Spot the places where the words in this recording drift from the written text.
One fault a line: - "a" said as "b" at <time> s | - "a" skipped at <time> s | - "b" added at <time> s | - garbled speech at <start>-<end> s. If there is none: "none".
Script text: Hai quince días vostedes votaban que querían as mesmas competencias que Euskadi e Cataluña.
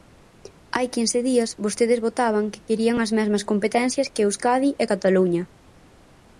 none